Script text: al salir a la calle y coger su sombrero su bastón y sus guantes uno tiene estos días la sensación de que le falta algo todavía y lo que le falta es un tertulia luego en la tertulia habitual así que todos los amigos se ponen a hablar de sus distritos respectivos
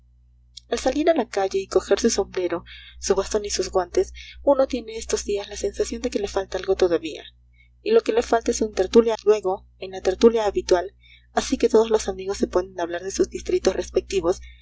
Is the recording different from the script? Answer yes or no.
no